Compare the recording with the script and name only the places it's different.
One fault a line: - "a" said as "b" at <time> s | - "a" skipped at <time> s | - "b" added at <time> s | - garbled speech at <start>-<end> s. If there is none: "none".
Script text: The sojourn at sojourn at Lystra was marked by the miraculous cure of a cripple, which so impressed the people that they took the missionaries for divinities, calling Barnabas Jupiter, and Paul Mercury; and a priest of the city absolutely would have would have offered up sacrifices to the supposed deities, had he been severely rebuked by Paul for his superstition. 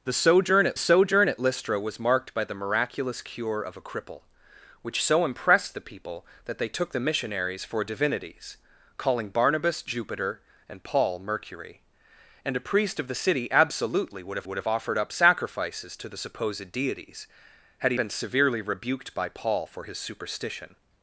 none